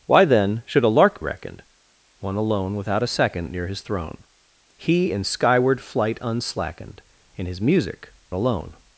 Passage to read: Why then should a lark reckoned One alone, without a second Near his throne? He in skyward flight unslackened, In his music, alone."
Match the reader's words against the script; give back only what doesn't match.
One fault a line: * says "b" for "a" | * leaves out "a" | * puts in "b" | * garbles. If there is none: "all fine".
all fine